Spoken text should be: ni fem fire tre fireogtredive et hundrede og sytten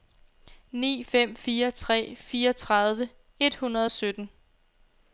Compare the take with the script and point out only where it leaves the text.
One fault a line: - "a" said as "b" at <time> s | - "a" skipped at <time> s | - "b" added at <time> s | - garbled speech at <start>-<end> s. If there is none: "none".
none